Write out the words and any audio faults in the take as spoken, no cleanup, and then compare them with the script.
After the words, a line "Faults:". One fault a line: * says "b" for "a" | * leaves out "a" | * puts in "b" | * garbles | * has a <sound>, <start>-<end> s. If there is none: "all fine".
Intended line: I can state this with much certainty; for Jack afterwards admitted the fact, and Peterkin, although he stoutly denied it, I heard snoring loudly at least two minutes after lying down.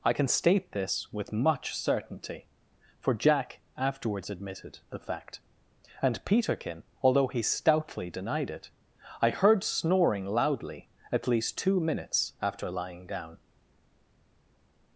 I can state this with much certainty; for Jack afterwards admitted the fact, and Peterkin, although he stoutly denied it, I heard snoring loudly at least two minutes after lying down.
Faults:
all fine